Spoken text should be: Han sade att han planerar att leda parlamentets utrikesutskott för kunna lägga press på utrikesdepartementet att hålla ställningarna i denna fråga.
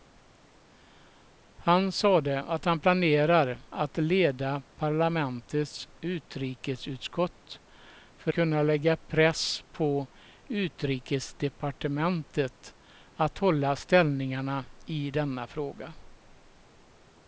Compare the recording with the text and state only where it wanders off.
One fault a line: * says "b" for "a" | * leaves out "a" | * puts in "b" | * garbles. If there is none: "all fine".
all fine